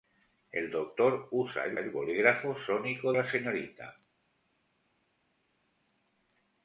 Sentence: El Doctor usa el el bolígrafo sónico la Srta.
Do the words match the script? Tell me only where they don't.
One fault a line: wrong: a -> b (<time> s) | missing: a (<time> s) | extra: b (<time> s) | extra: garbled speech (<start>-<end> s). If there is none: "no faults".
no faults